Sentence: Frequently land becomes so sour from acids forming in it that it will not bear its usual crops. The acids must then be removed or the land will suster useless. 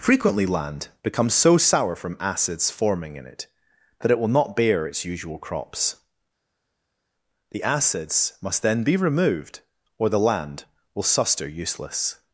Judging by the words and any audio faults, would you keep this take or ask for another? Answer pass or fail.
pass